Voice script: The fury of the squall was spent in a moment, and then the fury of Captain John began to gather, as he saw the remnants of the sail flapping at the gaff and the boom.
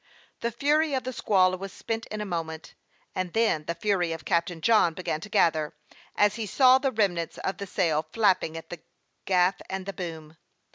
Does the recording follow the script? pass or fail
pass